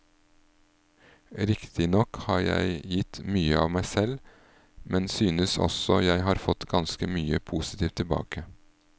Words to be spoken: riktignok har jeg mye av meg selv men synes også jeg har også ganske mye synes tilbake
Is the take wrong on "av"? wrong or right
right